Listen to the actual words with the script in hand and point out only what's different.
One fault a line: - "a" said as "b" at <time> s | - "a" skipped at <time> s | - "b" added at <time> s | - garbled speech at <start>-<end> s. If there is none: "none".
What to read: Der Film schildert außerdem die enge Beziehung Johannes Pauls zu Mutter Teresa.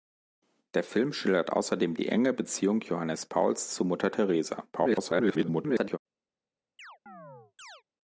- garbled speech at 4.7-6.0 s